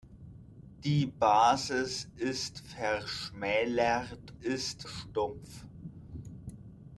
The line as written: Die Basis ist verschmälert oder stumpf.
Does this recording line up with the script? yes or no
no